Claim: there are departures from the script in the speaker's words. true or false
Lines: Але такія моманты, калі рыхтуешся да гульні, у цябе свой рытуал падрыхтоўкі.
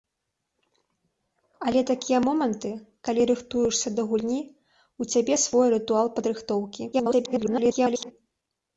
true